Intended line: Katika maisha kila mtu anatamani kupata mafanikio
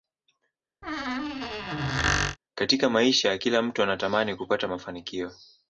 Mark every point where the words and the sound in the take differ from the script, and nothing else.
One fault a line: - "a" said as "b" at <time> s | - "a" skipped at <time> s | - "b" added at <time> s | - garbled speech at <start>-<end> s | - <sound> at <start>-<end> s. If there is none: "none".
- squeak at 0.8-2.4 s